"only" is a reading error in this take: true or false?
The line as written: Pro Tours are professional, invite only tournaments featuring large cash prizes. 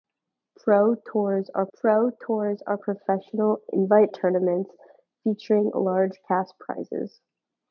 true